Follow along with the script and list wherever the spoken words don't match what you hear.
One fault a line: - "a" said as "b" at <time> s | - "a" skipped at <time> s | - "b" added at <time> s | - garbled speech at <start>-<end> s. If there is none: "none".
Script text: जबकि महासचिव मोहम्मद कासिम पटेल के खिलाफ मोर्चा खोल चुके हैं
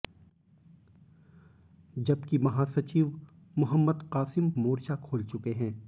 - "पटेल के खिलाफ" skipped at 4.5 s